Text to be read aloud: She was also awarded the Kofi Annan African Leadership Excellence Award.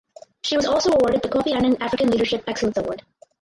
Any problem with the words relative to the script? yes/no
no